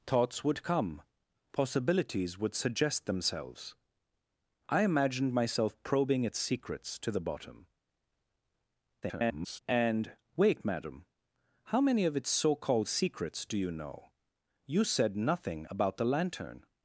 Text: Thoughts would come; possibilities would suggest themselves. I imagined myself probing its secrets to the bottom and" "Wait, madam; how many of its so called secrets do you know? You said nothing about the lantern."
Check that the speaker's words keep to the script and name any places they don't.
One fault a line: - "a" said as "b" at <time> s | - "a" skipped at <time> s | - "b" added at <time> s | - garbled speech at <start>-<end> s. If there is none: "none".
- garbled speech at 9.0-9.6 s